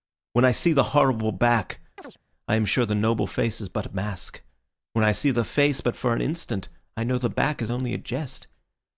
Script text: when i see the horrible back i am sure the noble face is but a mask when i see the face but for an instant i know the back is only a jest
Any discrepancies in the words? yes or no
no